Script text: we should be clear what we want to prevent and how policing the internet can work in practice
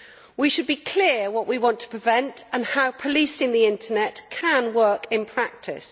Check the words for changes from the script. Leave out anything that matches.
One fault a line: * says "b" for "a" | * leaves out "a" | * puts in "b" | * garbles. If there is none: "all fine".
all fine